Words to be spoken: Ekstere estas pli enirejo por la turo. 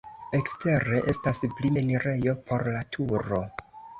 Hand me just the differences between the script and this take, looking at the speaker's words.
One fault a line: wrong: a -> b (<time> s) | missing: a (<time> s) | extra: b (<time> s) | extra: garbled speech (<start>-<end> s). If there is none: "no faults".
no faults